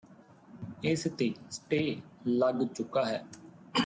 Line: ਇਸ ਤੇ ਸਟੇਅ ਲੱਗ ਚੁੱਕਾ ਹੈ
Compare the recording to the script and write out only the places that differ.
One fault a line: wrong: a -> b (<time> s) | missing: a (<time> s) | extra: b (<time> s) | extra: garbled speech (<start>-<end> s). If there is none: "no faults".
no faults